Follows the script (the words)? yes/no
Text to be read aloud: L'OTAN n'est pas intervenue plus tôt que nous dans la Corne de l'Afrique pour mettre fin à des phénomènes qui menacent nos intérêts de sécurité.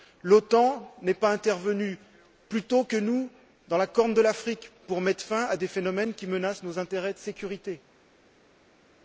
yes